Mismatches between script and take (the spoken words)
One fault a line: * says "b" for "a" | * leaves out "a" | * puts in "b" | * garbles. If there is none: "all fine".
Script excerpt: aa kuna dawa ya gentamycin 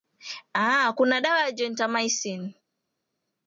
all fine